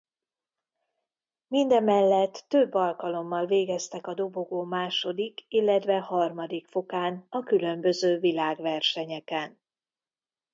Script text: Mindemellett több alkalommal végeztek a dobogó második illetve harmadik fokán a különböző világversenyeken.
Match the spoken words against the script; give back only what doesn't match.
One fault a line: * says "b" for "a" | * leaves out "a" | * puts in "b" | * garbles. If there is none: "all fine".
all fine